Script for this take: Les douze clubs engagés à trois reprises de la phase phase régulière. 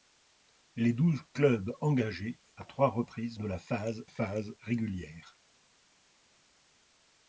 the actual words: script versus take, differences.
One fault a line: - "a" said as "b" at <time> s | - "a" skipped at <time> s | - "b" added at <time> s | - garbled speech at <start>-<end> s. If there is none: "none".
none